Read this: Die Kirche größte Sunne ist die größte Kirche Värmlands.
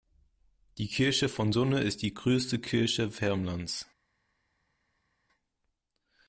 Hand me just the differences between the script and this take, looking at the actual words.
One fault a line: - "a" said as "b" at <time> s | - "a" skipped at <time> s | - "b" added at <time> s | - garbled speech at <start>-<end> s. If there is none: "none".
- "größte" said as "von" at 1.3 s